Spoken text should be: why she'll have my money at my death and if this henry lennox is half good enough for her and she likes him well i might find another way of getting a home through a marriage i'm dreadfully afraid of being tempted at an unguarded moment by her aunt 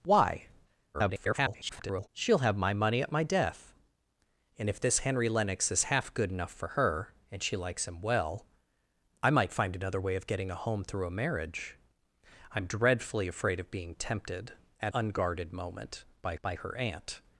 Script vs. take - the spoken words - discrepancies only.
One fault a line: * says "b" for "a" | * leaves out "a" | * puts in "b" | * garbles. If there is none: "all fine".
* garbles
* leaves out "an"
* puts in "by"